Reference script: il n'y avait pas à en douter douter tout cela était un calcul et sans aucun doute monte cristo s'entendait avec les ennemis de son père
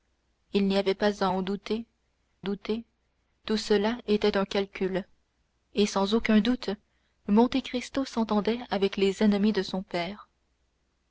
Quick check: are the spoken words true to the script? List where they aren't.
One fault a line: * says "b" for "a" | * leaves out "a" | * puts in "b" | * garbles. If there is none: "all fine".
all fine